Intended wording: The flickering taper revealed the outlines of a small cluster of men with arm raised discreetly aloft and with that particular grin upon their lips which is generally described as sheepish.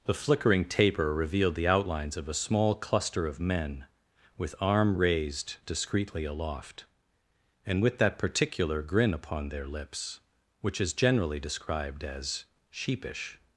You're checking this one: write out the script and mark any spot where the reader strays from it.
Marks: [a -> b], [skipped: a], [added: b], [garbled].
The flickering taper revealed the outlines of a small cluster of men with arm raised discreetly aloft and with that particular grin upon their lips which is generally described as sheepish.